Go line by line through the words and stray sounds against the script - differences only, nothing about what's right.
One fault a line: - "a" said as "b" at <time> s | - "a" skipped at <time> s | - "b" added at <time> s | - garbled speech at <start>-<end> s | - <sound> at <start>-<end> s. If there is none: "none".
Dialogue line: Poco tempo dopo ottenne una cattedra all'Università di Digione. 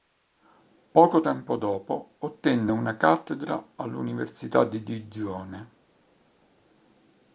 none